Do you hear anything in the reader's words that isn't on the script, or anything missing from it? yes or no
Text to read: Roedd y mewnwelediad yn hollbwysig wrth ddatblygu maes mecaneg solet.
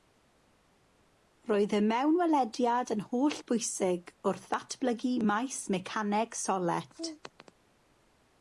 no